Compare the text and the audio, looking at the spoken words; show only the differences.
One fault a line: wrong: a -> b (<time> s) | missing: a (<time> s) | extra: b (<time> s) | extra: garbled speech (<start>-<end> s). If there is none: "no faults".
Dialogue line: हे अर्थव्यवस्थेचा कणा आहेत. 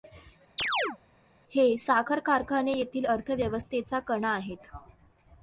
extra: साखर कारखाने येथील (1.8 s)